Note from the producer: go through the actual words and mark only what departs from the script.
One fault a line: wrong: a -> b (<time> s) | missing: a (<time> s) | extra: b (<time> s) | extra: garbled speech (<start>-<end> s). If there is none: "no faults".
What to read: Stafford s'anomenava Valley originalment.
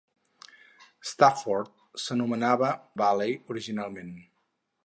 no faults